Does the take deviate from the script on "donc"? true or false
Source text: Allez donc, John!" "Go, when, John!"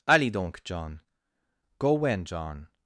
false